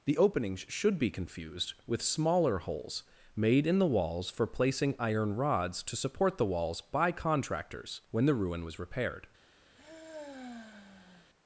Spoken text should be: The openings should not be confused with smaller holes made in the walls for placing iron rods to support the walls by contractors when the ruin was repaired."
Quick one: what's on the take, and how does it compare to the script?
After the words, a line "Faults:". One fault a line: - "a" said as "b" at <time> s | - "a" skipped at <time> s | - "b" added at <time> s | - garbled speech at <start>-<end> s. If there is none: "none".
The openings should be confused with smaller holes made in the walls for placing iron rods to support the walls by contractors when the ruin was repaired."
Faults:
- "not" skipped at 1.0 s